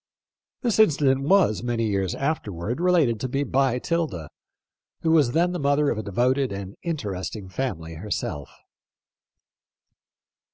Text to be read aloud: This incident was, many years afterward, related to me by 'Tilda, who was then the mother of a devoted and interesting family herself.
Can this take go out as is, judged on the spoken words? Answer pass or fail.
pass